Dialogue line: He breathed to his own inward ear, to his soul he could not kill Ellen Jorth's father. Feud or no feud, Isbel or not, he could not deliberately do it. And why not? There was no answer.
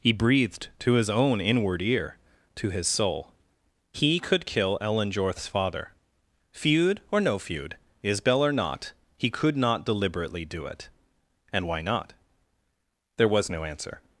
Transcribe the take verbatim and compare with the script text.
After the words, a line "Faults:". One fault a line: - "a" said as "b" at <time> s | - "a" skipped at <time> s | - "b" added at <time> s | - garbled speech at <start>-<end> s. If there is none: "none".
He breathed to his own inward ear, to his soul he could kill Ellen Jorth's father. Feud or no feud, Isbel or not, he could not deliberately do it. And why not? There was no answer.
Faults:
- "not" skipped at 4.5 s